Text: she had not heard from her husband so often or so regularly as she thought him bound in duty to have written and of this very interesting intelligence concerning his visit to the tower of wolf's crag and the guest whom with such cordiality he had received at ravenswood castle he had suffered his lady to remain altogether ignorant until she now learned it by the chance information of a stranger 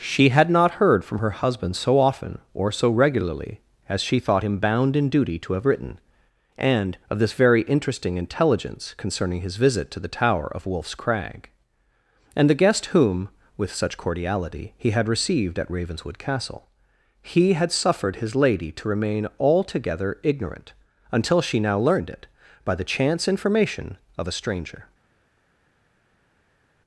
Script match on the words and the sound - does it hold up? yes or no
yes